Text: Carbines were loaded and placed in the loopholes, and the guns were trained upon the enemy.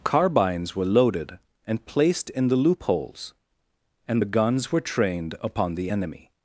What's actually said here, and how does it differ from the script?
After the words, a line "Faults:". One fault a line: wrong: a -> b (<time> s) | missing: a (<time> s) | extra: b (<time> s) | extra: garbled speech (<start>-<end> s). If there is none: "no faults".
Carbines were loaded and placed in the loopholes, and the guns were trained upon the enemy.
Faults:
no faults